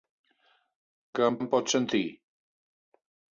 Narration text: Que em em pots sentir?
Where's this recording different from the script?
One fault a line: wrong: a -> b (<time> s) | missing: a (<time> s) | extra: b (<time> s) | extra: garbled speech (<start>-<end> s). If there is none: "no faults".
no faults